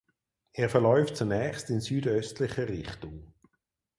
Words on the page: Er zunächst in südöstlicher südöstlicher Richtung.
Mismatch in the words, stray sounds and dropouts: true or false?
true